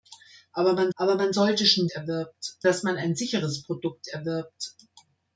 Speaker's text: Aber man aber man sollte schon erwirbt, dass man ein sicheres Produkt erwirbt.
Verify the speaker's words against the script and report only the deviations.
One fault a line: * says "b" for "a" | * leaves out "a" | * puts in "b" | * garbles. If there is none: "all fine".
all fine